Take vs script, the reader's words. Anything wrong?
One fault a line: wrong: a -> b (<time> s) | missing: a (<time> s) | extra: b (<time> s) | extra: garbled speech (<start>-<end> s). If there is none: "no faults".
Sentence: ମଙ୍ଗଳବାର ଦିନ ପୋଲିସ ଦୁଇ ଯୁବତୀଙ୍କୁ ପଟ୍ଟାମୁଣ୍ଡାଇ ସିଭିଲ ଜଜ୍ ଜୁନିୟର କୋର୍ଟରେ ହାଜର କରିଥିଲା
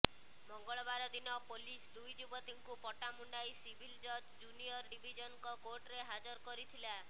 extra: ଡିଭିଜନଙ୍କ (4.9 s)